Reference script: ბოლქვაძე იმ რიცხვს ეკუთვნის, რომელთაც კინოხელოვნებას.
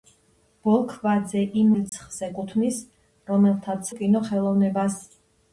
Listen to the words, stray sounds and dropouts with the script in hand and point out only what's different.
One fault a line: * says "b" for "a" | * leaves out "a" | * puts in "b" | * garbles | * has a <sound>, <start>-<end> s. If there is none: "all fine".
* has a dropout, 1.9-1.9 s